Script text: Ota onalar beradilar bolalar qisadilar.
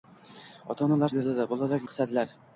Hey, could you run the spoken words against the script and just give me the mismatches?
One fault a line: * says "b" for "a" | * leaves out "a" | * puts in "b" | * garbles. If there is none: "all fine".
all fine